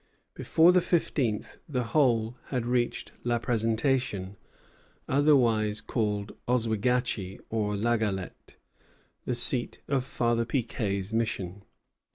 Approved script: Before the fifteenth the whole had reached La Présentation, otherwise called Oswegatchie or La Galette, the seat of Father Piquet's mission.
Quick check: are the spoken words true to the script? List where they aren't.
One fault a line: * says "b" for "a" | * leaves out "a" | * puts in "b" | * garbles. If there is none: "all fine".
all fine